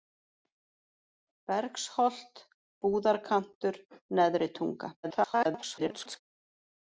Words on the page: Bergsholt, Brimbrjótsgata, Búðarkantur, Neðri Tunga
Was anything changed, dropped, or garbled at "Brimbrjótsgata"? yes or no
yes